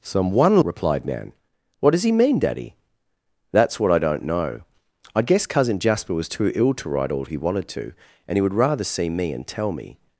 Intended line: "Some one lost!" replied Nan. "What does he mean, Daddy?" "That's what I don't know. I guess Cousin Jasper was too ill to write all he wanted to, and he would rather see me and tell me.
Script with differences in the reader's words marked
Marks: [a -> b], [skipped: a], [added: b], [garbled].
"Some one [skipped: lost!"] replied Nan. "What does he mean, Daddy?" "That's what I don't know. I guess Cousin Jasper was too ill to write all he wanted to, and he would rather see me and tell me.